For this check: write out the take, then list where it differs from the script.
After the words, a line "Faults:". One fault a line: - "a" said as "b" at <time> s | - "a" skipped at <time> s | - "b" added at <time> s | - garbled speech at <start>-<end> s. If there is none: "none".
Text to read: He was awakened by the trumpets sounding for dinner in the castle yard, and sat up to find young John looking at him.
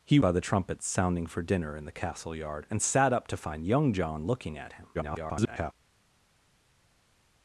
He by the trumpets sounding for dinner in the castle yard, and sat up to find young John looking at him. [garbled]
Faults:
- "was awakened" skipped at 0.2 s
- garbled speech at 4.9-5.7 s